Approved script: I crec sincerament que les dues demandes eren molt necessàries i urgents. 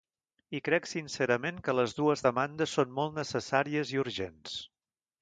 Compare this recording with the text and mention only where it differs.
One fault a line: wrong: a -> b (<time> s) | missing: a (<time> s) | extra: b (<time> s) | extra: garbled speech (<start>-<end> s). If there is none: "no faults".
wrong: eren -> són (2.8 s)